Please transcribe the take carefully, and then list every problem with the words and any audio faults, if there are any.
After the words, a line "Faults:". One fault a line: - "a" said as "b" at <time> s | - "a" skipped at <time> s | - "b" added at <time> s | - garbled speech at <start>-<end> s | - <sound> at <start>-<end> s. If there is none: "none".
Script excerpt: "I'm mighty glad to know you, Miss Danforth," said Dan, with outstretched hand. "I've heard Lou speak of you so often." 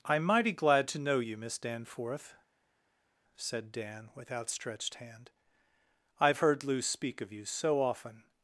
"I'm mighty glad to know you, Miss Danforth," said Dan, with outstretched hand. "I've heard Lou speak of you so often."
Faults:
none